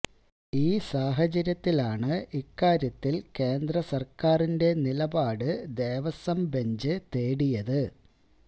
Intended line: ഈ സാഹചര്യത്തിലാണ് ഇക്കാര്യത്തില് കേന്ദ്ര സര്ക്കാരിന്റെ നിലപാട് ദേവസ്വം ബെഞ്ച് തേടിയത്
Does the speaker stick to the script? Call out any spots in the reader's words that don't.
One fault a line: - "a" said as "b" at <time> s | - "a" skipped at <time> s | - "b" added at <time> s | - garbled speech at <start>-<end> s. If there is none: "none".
none